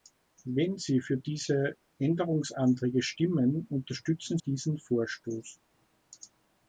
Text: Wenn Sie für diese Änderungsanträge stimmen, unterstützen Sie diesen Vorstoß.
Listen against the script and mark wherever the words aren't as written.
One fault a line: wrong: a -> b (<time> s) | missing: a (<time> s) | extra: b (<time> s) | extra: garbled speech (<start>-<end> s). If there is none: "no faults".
missing: Sie (4.4 s)